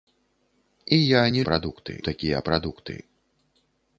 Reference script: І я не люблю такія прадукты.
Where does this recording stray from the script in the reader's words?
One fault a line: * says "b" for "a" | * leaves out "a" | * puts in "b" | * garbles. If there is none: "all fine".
* says "прадукты" for "люблю"